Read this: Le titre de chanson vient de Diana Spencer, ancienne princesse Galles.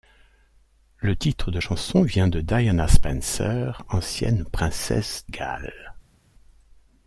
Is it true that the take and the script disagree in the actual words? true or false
false